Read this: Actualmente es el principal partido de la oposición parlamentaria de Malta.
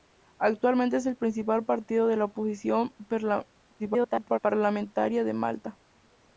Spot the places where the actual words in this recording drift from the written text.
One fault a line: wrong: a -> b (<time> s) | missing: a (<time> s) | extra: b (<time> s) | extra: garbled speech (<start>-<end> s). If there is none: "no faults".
extra: garbled speech (3.8-4.4 s)